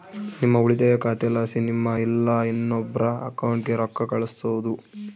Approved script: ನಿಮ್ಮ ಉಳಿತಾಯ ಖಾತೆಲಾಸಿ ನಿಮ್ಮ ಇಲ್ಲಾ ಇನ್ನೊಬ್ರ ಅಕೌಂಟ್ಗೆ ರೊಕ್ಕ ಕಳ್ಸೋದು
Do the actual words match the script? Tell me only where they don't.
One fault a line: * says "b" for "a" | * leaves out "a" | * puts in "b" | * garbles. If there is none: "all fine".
all fine